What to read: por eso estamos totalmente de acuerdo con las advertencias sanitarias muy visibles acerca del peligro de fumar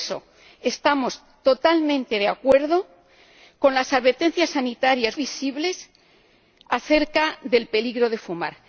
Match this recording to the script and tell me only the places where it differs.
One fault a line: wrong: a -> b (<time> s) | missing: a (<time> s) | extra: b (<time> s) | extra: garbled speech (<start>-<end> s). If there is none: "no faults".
missing: muy (5.2 s)